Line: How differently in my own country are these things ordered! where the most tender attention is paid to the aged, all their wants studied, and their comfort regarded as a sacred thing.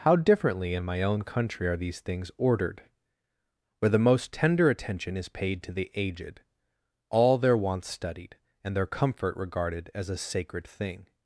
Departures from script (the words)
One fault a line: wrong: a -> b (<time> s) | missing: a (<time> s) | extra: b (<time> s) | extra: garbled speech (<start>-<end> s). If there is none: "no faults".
no faults